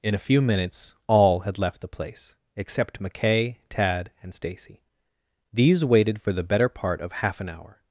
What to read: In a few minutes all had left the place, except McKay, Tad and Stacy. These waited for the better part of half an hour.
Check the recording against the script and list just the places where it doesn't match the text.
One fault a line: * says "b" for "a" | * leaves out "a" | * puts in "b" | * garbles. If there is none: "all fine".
all fine